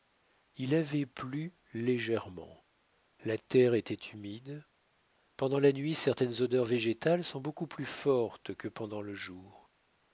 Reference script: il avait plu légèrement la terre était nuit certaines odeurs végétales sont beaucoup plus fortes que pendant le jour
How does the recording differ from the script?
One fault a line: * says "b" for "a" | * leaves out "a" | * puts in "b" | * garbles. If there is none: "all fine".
* puts in "humide pendant la"